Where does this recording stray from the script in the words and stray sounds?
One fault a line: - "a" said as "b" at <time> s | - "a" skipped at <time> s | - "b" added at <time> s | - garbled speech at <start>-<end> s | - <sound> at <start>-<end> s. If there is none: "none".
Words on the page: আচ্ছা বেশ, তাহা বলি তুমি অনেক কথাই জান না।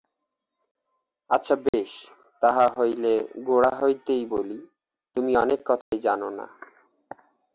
- dropout at 1.7-1.7 s
- "হইলে গোড়া হইতেই" added at 2.8 s
- dropout at 5.8-5.9 s